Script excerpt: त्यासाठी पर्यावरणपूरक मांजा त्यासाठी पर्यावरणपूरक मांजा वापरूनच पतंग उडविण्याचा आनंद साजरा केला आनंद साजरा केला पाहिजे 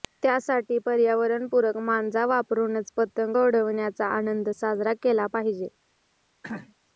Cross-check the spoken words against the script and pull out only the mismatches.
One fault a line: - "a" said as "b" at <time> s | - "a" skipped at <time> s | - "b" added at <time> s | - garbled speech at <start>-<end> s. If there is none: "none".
- "त्यासाठी पर्यावरणपूरक मांजा" skipped at 2.2 s
- "आनंद साजरा केला" skipped at 5.3 s